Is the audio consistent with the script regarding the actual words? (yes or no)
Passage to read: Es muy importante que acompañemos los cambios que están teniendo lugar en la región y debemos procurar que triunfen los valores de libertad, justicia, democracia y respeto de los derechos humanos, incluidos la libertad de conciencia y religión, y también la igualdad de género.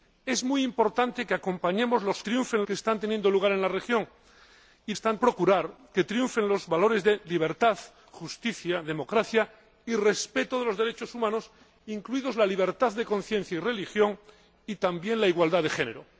no